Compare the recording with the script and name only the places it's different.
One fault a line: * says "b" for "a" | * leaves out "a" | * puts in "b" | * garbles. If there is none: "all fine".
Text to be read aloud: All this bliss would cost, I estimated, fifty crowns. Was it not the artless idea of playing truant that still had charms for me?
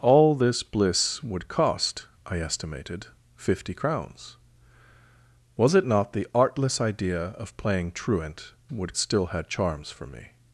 * says "would" for "that"